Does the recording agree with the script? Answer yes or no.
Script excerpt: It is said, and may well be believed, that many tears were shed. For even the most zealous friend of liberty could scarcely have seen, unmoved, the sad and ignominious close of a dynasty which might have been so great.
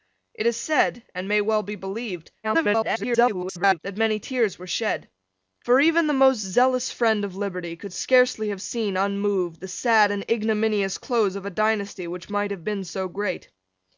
no